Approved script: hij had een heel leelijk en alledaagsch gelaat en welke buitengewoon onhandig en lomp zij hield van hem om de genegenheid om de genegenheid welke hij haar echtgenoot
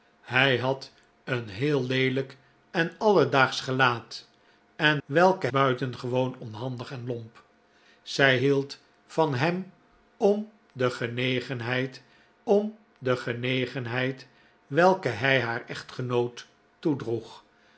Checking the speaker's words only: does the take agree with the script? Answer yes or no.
yes